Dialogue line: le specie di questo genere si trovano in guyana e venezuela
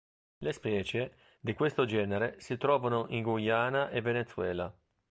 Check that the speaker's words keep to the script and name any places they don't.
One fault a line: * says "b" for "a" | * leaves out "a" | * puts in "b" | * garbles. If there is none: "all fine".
all fine